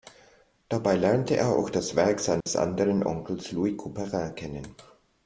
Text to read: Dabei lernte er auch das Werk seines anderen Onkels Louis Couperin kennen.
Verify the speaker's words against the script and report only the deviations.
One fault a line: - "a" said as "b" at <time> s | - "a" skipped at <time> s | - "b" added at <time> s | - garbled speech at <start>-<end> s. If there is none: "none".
none